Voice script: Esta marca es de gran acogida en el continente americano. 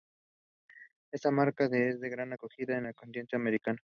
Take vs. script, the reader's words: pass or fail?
pass